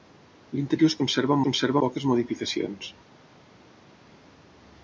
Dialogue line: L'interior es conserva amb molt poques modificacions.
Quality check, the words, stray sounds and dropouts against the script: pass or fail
fail